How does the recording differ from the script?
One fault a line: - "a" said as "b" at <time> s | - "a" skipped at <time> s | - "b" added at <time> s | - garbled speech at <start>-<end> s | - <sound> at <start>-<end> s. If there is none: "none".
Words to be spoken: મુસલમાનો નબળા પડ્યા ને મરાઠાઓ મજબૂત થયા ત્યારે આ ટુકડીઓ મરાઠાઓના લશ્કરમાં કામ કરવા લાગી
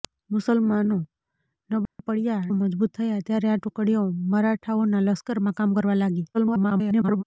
- dropout at 1.9-2.0 s
- "ને મરાઠાઓ" skipped at 2.5 s
- garbled speech at 6.3-7.2 s